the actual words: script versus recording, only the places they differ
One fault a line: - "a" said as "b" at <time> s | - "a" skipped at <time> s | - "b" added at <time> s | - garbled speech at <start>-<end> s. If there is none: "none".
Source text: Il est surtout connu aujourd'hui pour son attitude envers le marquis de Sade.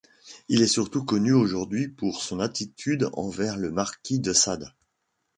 none